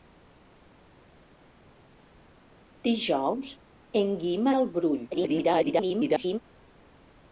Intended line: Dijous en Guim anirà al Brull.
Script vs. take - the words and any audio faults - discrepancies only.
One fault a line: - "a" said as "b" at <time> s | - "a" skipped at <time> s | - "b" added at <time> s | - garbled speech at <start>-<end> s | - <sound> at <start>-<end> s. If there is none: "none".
- "anirà" skipped at 4.5 s
- garbled speech at 5.1-6.4 s